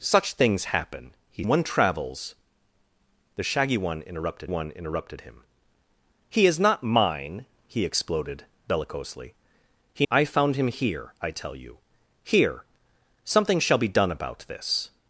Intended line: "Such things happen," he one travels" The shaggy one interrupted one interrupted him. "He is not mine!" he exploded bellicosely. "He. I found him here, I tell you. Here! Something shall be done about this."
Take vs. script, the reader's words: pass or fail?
pass